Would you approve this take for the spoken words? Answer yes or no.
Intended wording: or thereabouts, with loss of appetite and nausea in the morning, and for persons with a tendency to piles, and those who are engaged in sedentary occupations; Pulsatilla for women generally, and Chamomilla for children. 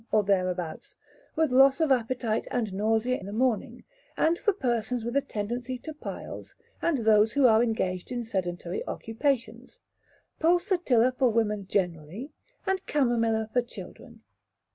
no